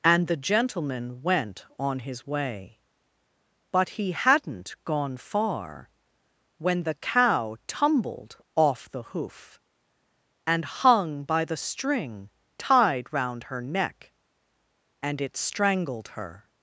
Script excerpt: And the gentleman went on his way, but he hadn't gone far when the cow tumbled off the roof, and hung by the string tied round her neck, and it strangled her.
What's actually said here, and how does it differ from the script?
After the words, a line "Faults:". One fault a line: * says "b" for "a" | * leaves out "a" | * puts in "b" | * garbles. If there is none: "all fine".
And the gentleman went on his way, but he hadn't gone far when the cow tumbled off the hoof, and hung by the string tied round her neck, and it strangled her.
Faults:
* says "hoof" for "roof"